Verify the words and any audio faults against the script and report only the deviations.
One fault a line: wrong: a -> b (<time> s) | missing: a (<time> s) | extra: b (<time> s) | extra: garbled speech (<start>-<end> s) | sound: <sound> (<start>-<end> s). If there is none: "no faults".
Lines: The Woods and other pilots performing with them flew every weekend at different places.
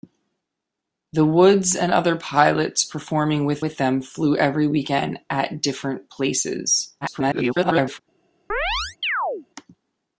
extra: with (3.6 s)
extra: garbled speech (7.0-8.0 s)
sound: chirp (8.5-9.5 s)